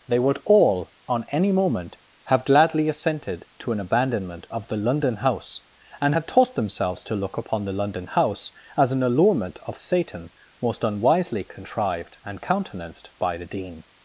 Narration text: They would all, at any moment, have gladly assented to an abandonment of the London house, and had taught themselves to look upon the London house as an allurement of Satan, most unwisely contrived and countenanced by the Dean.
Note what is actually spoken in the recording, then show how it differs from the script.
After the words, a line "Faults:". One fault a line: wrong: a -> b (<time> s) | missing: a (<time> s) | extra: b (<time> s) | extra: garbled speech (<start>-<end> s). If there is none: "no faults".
They would all, on any moment, have gladly assented to an abandonment of the London house, and had taught themselves to look upon the London house as an allurement of Satan, most unwisely contrived and countenanced by the Dean.
Faults:
wrong: at -> on (1.1 s)